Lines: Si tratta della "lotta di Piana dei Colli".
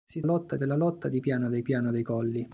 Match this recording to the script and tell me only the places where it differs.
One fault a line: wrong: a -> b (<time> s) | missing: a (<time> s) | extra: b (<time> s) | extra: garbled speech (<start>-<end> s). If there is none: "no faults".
wrong: tratta -> lotta (0.2 s)
extra: Piana dei (1.6 s)